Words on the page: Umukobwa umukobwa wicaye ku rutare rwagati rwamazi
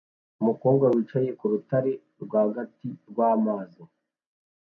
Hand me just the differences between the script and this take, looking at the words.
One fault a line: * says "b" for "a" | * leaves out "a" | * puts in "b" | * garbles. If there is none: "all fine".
* leaves out "umukobwa"